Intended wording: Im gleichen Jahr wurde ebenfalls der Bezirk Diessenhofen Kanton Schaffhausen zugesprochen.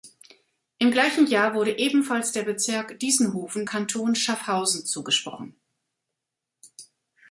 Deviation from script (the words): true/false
false